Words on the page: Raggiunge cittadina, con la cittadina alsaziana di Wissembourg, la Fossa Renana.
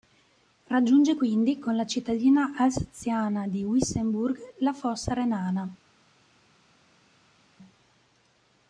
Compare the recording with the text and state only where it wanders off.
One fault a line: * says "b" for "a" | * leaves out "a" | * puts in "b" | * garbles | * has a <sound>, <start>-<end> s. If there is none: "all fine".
* says "quindi" for "cittadina"